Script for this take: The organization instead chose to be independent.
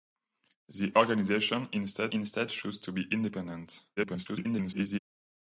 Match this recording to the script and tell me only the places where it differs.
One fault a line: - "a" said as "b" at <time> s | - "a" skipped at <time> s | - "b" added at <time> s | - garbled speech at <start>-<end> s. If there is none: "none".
- "instead" added at 2.1 s
- garbled speech at 4.0-5.0 s